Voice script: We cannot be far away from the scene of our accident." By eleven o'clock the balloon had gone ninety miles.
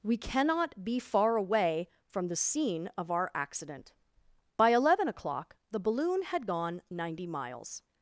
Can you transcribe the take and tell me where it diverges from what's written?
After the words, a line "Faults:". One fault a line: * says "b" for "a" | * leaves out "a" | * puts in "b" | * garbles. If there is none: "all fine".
We cannot be far away from the scene of our accident." By eleven o'clock the balloon had gone ninety miles.
Faults:
all fine